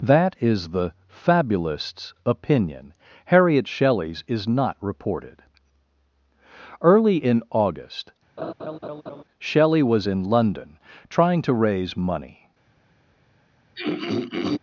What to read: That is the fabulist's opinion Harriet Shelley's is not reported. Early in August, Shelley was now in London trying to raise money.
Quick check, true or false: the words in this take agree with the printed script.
false